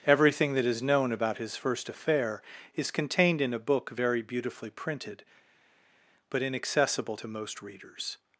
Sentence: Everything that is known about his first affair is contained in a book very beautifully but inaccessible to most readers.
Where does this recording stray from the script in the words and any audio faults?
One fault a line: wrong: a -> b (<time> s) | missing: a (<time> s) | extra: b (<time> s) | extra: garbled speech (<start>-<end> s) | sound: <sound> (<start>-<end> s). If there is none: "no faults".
extra: printed (4.7 s)